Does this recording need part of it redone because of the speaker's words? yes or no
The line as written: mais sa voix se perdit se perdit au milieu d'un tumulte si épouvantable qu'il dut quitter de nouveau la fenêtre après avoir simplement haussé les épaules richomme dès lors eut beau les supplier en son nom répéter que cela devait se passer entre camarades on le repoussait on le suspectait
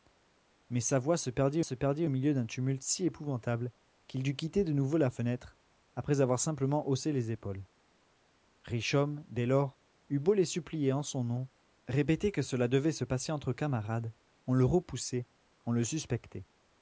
no